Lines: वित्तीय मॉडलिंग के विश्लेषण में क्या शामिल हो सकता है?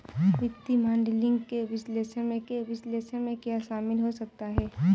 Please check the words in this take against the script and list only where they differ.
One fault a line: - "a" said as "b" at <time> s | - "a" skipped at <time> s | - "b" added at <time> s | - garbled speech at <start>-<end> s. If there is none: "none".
- "के विश्लेषण में" added at 2.5 s